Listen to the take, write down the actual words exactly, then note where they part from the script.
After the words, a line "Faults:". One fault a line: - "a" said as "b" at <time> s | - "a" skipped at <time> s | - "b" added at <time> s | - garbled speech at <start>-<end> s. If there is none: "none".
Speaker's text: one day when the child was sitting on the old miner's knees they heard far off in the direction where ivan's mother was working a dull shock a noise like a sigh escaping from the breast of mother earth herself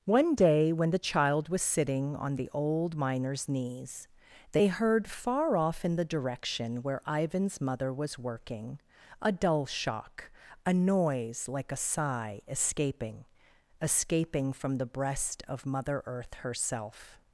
one day when the child was sitting on the old miner's knees they heard far off in the direction where ivan's mother was working a dull shock a noise like a sigh escaping escaping from the breast of mother earth herself
Faults:
- "escaping" added at 13.8 s